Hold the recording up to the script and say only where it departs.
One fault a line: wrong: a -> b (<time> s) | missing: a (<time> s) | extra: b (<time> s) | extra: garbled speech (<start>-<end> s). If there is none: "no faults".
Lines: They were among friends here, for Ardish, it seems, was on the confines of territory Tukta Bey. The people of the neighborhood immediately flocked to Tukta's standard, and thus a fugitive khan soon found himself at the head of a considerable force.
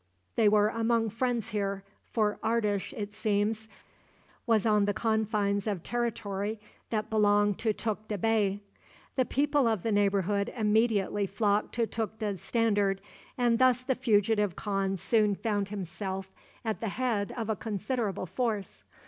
extra: that belonged to (6.9 s)
wrong: a -> the (13.8 s)